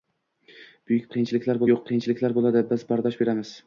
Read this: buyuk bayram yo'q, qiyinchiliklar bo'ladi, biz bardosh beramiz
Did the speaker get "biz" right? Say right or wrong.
right